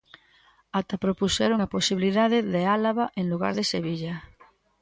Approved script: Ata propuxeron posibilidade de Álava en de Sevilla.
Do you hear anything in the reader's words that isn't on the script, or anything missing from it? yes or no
yes